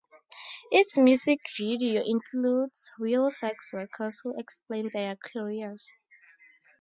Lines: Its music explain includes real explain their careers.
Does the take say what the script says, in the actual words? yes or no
no